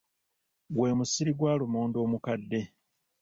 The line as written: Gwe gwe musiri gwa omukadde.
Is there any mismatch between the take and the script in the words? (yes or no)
yes